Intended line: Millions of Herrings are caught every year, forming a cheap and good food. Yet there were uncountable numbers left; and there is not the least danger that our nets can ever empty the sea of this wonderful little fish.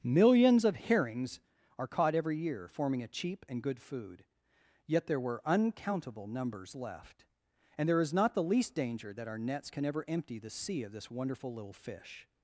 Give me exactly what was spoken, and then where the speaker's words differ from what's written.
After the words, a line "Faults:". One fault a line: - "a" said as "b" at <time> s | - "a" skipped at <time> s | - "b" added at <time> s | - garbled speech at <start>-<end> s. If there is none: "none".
Millions of Herrings are caught every year, forming a cheap and good food. Yet there were uncountable numbers left; and there is not the least danger that our nets can ever empty the sea of this wonderful little fish.
Faults:
none